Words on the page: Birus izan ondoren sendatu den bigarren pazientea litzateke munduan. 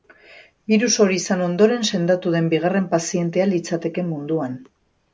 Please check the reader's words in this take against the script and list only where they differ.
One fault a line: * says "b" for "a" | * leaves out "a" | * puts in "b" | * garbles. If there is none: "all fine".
* puts in "hori"